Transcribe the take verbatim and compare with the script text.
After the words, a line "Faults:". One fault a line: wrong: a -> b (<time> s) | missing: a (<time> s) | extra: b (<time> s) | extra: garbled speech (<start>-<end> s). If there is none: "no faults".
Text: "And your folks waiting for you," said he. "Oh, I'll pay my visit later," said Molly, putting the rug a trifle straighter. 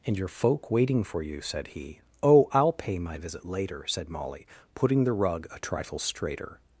"And your folk waiting for you," said he. "Oh, I'll pay my visit later," said Molly, putting the rug a trifle straighter.
Faults:
wrong: folks -> folk (0.3 s)